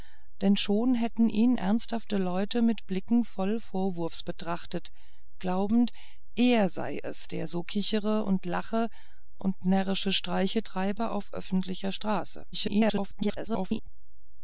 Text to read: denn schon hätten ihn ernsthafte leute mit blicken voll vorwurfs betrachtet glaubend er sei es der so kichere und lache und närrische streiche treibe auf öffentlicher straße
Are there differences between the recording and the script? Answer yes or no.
yes